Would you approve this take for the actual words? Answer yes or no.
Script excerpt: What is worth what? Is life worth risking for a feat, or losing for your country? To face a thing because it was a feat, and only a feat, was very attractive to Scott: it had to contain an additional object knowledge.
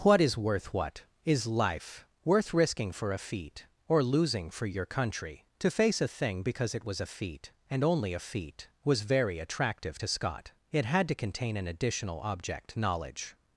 yes